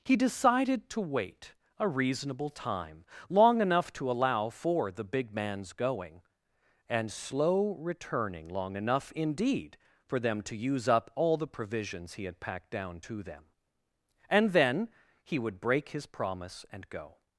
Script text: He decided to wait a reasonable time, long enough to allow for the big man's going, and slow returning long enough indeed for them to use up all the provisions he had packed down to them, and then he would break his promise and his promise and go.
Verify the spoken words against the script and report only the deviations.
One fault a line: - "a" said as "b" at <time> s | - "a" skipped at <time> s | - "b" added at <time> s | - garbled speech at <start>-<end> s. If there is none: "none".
- "his promise and" skipped at 16.9 s